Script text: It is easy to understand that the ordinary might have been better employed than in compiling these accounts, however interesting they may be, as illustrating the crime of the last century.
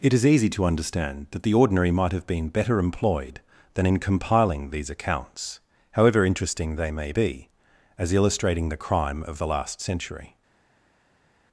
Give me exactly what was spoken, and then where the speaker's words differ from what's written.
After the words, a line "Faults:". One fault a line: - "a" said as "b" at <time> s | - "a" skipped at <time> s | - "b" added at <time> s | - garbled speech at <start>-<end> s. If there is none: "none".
It is easy to understand that the ordinary might have been better employed than in compiling these accounts, however interesting they may be, as illustrating the crime of the last century.
Faults:
none